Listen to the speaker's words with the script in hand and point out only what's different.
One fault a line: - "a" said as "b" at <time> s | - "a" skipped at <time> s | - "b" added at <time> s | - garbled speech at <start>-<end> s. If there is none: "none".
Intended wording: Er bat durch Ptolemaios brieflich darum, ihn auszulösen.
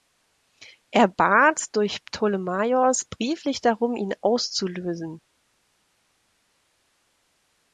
none